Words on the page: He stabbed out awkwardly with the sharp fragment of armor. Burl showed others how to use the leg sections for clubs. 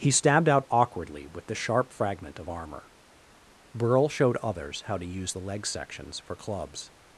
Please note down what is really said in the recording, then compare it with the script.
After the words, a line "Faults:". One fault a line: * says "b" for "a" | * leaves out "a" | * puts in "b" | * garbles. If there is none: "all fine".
He stabbed out awkwardly with the sharp fragment of armor. Burl showed others how to use the leg sections for clubs.
Faults:
all fine